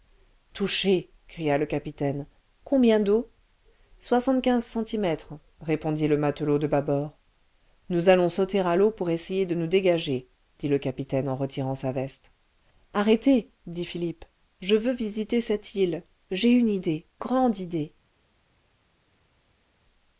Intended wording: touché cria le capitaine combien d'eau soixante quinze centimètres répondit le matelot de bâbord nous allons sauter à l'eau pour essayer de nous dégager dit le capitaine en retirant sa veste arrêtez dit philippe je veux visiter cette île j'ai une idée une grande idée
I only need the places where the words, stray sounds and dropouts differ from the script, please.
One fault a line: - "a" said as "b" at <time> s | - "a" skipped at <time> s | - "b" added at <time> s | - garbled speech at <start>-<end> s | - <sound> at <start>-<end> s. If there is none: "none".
- "une" skipped at 17.1 s